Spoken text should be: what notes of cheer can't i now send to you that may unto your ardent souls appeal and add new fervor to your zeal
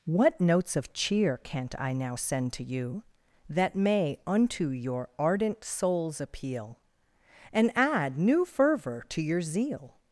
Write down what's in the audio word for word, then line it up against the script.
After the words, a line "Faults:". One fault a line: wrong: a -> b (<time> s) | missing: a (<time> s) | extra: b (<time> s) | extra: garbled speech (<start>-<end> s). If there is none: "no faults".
what notes of cheer can't i now send to you that may unto your ardent souls appeal and add new fervor to your zeal
Faults:
no faults